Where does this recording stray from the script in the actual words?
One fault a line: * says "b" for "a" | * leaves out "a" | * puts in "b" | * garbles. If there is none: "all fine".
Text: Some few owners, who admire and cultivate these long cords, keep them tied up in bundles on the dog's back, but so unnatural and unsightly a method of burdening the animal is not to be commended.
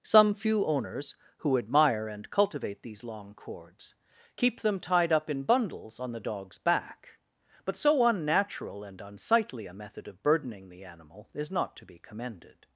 all fine